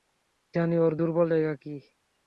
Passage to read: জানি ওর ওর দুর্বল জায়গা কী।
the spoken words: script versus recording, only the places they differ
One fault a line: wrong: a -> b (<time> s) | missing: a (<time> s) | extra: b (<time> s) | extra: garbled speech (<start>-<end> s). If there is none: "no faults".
missing: ওর (0.9 s)